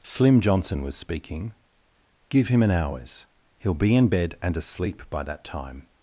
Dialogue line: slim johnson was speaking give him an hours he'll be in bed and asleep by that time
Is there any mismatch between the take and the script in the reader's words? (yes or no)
no